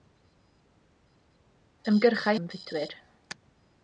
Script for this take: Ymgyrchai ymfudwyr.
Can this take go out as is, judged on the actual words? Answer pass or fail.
pass